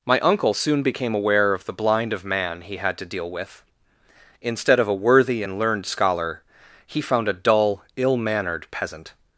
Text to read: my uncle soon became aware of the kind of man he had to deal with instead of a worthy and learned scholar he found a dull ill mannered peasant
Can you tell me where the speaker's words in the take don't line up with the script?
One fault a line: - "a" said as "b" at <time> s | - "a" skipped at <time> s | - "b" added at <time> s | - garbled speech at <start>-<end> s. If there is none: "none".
- "kind" said as "blind" at 1.7 s